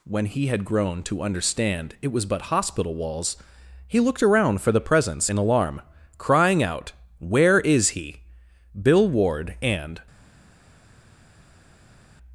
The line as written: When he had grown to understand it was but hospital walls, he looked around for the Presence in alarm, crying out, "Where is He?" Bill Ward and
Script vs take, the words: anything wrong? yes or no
no